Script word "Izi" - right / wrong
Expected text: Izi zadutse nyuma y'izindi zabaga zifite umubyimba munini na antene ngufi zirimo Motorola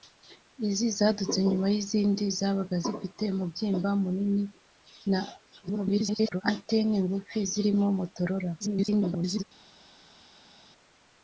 right